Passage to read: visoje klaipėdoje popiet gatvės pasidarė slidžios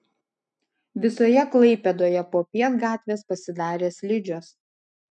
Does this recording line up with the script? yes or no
yes